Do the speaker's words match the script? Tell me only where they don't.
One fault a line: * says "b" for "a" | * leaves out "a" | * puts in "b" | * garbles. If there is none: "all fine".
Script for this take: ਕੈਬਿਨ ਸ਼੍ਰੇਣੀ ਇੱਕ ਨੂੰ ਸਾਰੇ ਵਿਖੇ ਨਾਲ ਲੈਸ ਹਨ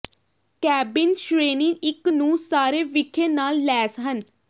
all fine